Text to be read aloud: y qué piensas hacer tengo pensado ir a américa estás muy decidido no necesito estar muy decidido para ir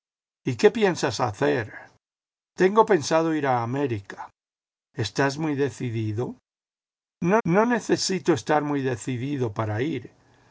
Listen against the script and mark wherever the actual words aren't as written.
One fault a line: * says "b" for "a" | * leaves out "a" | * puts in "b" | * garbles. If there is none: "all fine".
* puts in "no"